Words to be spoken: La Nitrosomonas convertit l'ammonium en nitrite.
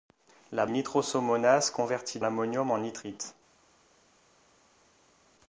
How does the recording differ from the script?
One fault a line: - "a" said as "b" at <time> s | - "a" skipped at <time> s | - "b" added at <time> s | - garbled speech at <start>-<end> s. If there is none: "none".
none